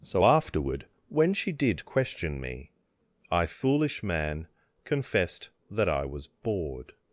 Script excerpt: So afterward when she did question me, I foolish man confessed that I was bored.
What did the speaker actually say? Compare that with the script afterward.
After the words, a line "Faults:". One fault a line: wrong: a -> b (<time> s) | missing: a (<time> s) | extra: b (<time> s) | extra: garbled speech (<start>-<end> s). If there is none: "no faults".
So afterward when she did question me, I foolish man confessed that I was bored.
Faults:
no faults